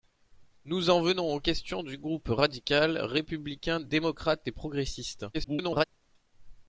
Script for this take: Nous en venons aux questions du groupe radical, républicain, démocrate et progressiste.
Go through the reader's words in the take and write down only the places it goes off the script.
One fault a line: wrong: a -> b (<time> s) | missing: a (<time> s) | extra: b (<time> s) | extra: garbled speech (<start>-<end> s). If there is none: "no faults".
extra: garbled speech (5.3-5.8 s)